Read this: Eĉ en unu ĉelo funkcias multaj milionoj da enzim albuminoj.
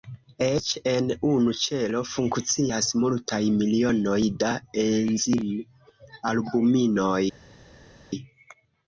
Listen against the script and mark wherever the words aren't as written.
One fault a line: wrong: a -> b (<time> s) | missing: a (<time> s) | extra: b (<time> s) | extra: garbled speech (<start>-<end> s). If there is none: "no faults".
no faults